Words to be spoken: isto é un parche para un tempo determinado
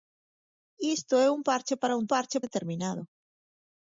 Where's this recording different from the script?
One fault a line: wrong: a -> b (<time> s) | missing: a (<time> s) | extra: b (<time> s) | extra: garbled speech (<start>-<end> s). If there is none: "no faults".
wrong: tempo -> parche (2.1 s)